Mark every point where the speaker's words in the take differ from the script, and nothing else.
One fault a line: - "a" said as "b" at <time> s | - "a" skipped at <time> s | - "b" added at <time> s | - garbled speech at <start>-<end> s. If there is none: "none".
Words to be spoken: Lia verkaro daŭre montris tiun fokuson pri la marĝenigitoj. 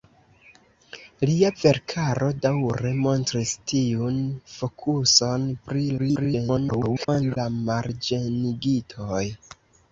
- garbled speech at 6.0-7.4 s